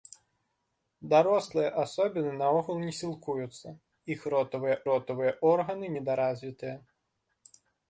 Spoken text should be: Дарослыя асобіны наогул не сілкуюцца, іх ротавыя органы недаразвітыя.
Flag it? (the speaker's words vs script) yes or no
yes